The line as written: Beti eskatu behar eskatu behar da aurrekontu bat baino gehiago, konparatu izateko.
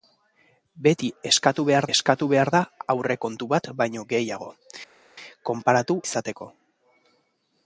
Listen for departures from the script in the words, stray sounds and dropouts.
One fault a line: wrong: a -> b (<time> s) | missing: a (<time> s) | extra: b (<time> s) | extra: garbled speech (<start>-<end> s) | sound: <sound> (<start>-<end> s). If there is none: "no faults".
no faults